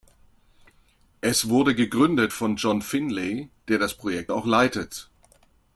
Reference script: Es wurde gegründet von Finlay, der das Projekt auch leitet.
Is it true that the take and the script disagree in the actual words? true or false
true